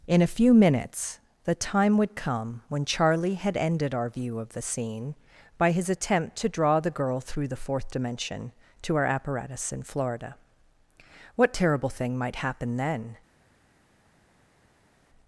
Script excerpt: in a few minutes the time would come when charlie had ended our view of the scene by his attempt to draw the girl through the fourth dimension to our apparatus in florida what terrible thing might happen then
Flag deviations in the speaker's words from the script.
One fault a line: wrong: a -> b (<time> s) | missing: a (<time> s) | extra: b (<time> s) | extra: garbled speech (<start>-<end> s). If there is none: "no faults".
no faults